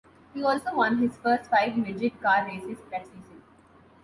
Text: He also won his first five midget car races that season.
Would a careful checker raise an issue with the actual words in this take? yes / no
no